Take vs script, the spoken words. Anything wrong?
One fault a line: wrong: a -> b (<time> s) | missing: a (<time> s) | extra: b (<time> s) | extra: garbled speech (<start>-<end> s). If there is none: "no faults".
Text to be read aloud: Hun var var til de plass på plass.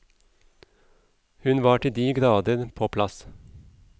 missing: var (1.8 s)
wrong: plass -> grader (2.1 s)